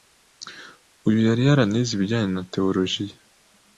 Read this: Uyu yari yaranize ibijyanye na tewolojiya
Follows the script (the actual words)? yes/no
yes